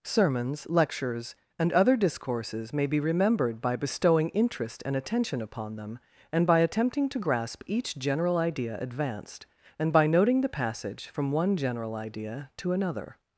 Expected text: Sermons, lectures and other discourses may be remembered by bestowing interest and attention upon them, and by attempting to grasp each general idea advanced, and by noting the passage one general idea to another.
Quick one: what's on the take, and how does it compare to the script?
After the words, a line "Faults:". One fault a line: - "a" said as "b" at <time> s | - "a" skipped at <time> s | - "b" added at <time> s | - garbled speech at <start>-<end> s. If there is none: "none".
Sermons, lectures and other discourses may be remembered by bestowing interest and attention upon them, and by attempting to grasp each general idea advanced, and by noting the passage from one general idea to another.
Faults:
- "from" added at 11.1 s